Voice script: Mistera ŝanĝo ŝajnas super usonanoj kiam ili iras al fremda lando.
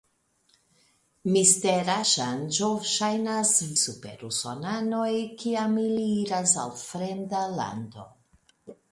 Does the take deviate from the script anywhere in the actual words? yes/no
no